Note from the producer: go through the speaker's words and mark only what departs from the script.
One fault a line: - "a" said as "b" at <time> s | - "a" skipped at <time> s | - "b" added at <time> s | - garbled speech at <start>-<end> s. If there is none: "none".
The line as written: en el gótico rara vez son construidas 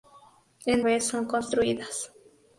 - "el gótico rara" skipped at 0.8 s